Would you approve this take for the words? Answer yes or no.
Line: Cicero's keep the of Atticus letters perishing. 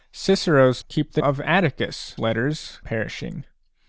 yes